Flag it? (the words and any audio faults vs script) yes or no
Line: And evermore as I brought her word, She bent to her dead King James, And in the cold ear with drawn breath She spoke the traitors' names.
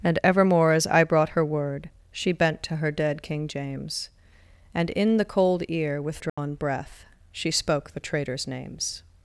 yes